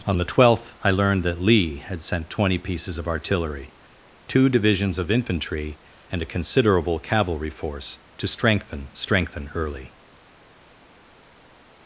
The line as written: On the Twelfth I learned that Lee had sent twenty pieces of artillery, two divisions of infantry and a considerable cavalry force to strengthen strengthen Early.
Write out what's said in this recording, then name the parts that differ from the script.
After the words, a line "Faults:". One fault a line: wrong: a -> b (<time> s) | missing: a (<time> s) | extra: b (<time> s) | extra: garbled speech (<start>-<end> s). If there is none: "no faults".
On the Twelfth I learned that Lee had sent twenty pieces of artillery, two divisions of infantry and a considerable cavalry force to strengthen strengthen Early.
Faults:
no faults